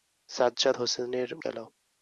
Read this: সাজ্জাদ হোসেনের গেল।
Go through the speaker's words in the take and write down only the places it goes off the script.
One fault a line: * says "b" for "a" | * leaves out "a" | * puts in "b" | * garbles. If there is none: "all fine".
all fine